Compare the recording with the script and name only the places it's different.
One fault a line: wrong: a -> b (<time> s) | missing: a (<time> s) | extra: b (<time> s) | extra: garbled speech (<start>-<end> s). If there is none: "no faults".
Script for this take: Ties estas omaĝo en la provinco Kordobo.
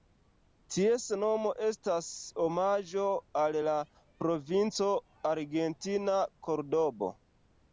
extra: nomo (1.2 s)
wrong: en -> al (3.4 s)
extra: argentina (5.3 s)